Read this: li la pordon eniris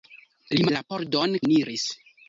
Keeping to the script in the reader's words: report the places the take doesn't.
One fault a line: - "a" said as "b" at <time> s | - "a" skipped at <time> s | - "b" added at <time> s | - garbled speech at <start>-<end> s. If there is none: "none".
none